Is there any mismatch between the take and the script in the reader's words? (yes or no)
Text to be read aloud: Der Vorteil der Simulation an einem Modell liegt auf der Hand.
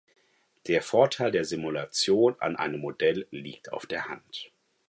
no